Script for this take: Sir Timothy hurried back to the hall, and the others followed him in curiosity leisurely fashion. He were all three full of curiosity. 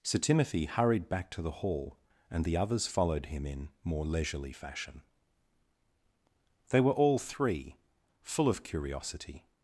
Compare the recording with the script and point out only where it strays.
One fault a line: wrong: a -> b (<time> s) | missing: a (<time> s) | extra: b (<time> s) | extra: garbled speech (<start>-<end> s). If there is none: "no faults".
wrong: curiosity -> more (3.8 s)
wrong: He -> They (6.7 s)